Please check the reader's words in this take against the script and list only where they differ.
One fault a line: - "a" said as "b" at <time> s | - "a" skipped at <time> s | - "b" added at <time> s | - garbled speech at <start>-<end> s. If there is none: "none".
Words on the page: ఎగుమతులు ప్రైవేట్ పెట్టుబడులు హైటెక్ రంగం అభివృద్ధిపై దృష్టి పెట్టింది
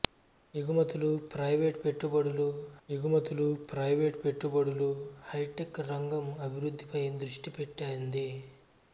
- "ఎగుమతులు ప్రైవేట్ పెట్టుబడులు" added at 2.9 s